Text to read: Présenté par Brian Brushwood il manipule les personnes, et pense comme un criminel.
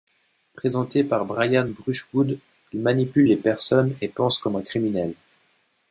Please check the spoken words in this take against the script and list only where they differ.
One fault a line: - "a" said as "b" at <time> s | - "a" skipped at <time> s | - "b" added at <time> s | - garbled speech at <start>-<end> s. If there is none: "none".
none